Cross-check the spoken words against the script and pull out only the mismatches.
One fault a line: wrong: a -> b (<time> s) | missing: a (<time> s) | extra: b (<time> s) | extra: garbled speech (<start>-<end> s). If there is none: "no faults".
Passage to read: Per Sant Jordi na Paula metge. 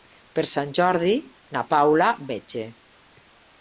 no faults